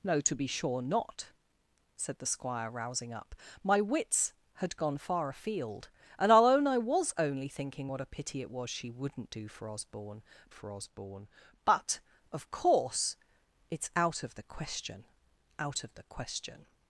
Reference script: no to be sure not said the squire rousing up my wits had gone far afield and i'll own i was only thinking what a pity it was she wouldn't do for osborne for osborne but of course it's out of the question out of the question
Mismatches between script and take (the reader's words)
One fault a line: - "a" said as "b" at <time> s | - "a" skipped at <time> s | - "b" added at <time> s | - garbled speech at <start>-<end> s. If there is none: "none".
none